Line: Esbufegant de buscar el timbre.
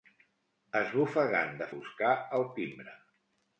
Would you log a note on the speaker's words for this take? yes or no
no